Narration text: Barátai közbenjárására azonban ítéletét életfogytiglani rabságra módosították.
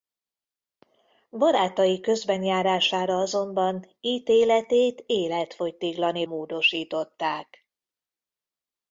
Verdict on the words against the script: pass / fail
fail